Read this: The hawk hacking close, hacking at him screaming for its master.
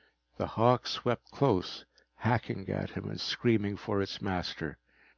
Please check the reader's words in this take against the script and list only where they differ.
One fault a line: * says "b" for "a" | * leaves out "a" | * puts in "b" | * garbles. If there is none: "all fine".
* says "swept" for "hacking"
* puts in "and"